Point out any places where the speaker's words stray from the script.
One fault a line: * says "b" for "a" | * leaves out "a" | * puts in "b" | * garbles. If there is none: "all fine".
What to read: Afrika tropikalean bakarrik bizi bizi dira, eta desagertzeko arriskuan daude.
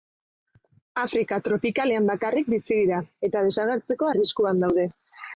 * leaves out "bizi"